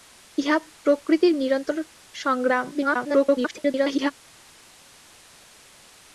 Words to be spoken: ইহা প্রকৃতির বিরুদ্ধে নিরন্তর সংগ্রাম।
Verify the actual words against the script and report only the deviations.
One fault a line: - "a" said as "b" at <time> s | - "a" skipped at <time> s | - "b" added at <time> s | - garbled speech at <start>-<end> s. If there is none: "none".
- "বিরুদ্ধে" skipped at 1.3 s
- garbled speech at 2.7-4.1 s